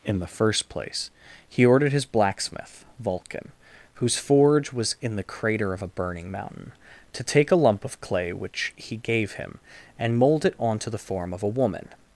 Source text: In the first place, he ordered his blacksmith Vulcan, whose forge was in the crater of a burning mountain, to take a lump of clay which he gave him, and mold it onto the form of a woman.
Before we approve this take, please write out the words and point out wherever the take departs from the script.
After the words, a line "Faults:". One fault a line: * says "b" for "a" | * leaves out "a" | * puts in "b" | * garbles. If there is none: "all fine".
In the first place, he ordered his blacksmith Vulcan, whose forge was in the crater of a burning mountain, to take a lump of clay which he gave him, and mold it onto the form of a woman.
Faults:
all fine